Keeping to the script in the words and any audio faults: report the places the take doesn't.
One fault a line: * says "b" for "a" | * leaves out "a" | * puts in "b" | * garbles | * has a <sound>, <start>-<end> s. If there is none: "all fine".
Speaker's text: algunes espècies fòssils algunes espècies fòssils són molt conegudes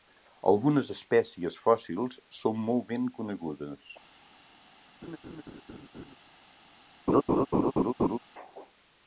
* leaves out "algunes espècies fòssils"
* puts in "ben"
* has a laugh, 5.0-6.2 s
* has a laugh, 7.1-8.2 s